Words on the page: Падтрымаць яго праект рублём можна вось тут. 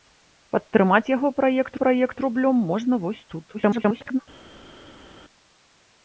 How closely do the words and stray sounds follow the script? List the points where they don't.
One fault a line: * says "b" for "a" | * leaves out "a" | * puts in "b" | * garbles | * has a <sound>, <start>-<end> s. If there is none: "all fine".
* puts in "праект"
* garbles